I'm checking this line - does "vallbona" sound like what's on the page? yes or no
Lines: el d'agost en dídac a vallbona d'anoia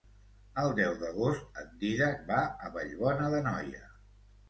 yes